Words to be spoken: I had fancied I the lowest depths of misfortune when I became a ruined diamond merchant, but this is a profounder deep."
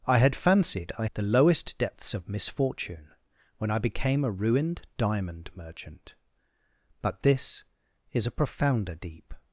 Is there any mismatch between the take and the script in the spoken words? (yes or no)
no